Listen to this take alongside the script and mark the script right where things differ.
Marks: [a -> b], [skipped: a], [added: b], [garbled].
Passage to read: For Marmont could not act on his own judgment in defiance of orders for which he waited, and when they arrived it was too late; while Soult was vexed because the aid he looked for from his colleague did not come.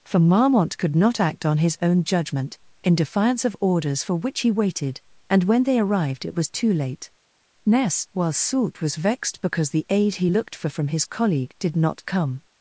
For Marmont could not act on his own judgment in defiance of orders for which he waited, and when they arrived it was too late; [added: ness] while Soult was vexed because the aid he looked for from his colleague did not come.